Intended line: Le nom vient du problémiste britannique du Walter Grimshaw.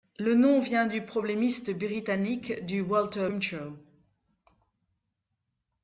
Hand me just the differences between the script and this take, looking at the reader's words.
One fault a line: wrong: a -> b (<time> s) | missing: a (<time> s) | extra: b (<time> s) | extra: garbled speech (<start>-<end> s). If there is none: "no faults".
no faults